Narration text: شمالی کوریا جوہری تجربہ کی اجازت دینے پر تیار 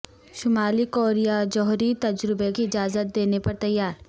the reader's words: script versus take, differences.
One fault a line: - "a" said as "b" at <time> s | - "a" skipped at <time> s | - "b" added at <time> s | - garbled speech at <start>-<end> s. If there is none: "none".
none